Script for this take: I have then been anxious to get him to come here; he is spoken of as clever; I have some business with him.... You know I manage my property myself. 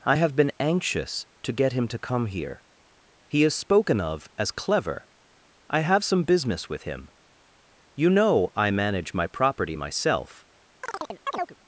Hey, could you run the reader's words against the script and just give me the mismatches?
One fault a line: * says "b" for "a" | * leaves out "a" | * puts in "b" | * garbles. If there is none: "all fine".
* leaves out "then"